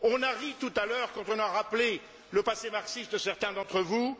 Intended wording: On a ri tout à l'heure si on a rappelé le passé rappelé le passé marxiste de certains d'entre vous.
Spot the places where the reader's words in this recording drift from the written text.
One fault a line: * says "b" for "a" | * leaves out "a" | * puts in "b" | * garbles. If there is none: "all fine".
* says "quand" for "si"
* leaves out "rappelé le passé"